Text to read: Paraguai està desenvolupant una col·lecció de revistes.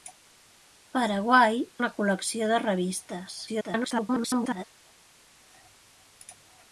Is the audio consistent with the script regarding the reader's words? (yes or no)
no